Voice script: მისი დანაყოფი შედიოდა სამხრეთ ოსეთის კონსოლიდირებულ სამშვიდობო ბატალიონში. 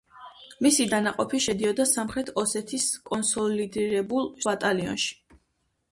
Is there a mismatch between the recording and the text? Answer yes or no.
yes